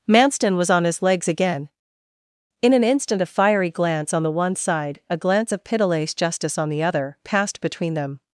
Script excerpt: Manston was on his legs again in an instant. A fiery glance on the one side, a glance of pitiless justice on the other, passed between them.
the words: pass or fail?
pass